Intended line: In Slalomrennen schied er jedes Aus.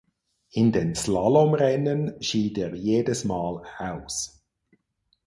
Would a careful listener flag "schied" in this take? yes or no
no